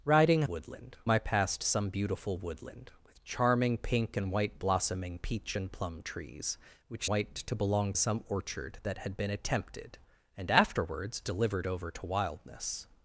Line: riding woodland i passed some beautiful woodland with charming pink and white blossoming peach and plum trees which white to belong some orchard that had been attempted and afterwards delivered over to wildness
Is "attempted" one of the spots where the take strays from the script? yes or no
no